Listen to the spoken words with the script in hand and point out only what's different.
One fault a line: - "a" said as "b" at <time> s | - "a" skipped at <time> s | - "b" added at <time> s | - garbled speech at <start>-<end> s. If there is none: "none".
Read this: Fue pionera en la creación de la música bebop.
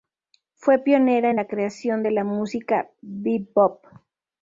none